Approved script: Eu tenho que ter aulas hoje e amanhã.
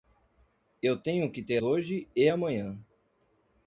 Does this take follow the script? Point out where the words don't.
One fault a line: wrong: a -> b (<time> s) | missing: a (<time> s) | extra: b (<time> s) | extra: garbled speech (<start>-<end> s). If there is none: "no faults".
missing: aulas (1.6 s)